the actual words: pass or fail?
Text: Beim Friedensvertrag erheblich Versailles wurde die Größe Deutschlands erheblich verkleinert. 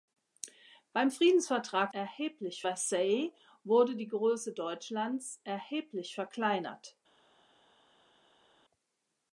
pass